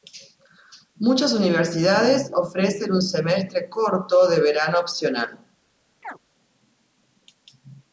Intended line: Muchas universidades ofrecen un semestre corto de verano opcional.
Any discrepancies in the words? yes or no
no